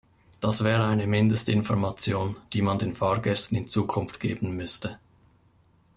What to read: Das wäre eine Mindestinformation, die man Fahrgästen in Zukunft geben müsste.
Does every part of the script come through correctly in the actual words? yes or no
no